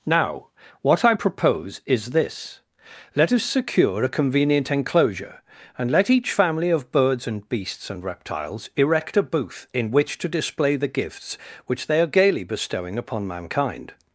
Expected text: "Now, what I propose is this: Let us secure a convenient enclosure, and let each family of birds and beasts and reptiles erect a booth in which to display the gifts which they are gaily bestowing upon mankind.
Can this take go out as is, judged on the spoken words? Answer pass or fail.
pass